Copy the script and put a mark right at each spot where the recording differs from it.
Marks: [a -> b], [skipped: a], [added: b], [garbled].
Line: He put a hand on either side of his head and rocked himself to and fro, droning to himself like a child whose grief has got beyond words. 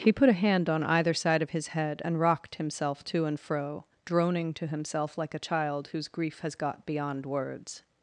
He put a hand on either side of his head and rocked himself to and fro, droning to himself like a child whose grief has got beyond words.